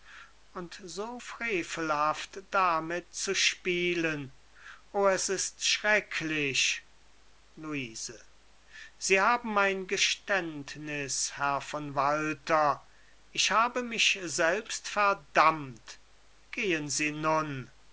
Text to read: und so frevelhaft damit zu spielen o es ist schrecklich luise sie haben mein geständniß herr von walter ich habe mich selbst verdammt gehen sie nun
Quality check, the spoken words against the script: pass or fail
pass